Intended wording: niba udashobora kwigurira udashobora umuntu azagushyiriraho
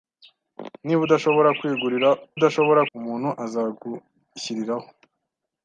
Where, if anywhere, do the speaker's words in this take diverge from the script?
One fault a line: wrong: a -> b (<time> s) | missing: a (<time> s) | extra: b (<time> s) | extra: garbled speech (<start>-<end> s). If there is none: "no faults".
no faults